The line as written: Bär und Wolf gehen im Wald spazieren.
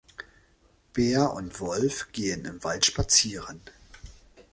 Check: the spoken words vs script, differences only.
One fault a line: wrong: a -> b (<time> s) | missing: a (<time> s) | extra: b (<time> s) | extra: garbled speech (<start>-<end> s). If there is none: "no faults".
no faults